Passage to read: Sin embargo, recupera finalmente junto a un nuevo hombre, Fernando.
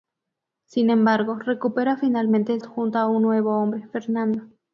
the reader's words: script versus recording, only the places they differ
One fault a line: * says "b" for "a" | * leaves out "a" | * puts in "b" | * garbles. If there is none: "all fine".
all fine